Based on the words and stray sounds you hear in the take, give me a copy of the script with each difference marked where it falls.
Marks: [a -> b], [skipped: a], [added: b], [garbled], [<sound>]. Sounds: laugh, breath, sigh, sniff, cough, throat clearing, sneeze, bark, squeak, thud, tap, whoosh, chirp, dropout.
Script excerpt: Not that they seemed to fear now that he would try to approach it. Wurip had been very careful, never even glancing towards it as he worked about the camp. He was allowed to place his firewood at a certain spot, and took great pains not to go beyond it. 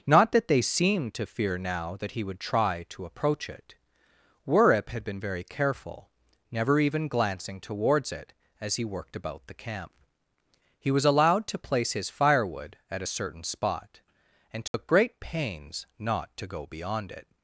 Not that they seemed to fear now that he would try to approach it. Wurip had been very careful, never even glancing towards it as he worked about the camp. He was allowed to place his firewood at a certain spot, and took [dropout] great pains not to go beyond it.